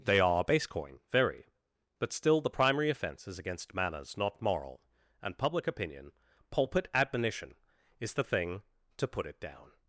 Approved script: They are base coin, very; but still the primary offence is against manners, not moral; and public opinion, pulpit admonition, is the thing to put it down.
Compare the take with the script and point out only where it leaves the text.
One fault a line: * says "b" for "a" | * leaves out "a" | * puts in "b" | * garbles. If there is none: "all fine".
all fine